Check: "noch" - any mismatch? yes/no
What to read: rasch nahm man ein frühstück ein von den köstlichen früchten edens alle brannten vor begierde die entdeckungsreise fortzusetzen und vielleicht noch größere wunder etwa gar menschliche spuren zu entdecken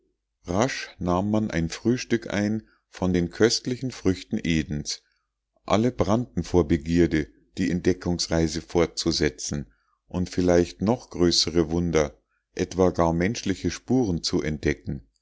no